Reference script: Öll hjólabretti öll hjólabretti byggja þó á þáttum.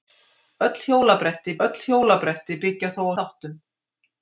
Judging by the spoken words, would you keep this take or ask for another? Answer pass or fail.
pass